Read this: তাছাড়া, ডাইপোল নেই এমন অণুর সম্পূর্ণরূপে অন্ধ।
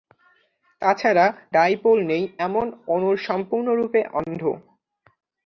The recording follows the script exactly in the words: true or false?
true